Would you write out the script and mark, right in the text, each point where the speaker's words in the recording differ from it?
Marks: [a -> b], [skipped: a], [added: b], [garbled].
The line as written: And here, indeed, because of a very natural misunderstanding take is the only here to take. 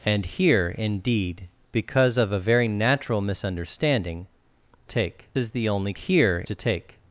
And here, indeed, because of a very natural misunderstanding take is the only here to take.